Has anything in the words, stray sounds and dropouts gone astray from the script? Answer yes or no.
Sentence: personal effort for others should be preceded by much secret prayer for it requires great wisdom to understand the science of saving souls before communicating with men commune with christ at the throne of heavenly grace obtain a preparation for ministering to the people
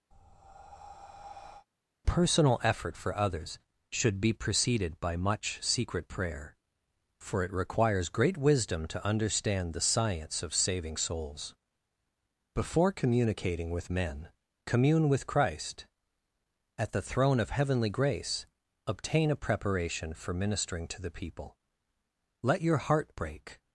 yes